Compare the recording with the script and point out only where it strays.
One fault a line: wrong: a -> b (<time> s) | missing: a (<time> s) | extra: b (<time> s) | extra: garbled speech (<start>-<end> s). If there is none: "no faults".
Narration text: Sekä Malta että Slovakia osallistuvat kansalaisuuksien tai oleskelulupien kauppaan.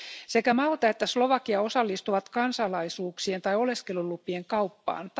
no faults